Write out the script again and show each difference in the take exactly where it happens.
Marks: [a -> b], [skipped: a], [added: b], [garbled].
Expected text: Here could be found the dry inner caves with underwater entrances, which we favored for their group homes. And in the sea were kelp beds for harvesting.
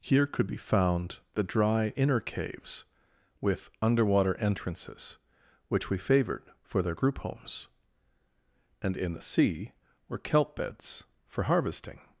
Here could be found the dry inner caves with underwater entrances, which we favored for their group homes. And in the sea were kelp beds for harvesting.